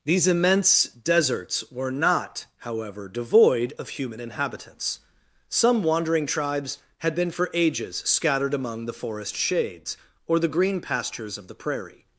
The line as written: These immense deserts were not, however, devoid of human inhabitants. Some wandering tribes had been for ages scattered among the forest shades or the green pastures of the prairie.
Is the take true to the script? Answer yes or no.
yes